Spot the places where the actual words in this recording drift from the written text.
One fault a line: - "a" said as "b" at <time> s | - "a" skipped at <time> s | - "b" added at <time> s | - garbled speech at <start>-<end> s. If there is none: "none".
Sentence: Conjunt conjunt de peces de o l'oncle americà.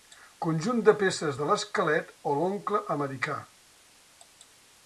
- "conjunt" skipped at 0.8 s
- "l'esquelet" added at 1.5 s